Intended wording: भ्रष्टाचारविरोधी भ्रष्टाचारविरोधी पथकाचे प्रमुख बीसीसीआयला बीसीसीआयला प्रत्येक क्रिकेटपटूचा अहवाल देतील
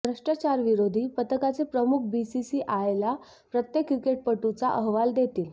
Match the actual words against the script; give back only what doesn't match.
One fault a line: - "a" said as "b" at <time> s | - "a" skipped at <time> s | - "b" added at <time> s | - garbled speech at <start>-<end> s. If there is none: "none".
- "भ्रष्टाचारविरोधी" skipped at 1.1 s
- "बीसीसीआयला" skipped at 3.1 s